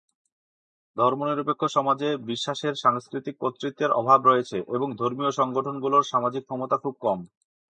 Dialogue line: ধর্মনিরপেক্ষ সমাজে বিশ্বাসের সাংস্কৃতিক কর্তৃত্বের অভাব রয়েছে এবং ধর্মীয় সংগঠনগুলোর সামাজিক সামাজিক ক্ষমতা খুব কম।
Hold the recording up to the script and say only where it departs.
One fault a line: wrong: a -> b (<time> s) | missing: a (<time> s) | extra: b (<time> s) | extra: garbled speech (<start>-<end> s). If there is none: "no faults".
missing: সামাজিক (6.4 s)